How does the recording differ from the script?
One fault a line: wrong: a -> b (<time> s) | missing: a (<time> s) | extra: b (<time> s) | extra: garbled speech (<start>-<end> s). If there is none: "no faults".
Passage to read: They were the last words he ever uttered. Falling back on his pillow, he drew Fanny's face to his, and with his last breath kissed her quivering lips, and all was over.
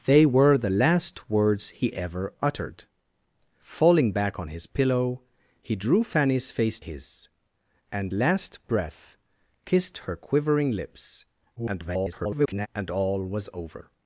missing: to (6.8 s)
missing: with his (8.1 s)
extra: garbled speech (11.6-12.7 s)